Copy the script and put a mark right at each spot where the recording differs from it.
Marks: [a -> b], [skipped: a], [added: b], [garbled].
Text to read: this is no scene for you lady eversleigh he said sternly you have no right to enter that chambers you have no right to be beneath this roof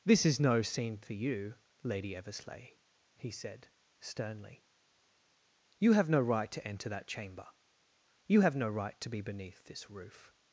this is no scene for you lady eversleigh he said sternly you have no right to enter that [chambers -> chamber] you have no right to be beneath this roof